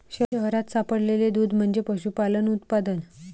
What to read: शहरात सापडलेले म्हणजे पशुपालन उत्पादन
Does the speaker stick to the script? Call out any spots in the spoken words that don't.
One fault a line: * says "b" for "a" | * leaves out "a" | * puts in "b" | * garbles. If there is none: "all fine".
* puts in "दूध"